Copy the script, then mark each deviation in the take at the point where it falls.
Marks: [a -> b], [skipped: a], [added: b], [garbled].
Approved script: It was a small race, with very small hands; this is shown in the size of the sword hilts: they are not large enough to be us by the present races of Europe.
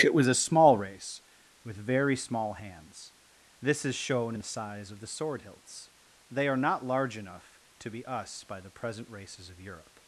It was a small race, with very small hands; this is shown in the size of the sword hilts: they are not large enough to be us by the present races of Europe.